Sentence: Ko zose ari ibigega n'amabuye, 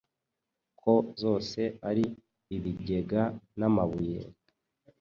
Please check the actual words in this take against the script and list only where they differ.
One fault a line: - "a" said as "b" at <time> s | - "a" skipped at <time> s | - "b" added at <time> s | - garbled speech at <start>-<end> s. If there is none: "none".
none